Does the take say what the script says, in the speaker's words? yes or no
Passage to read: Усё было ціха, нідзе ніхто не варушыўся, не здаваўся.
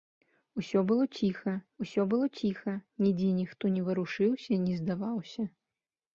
no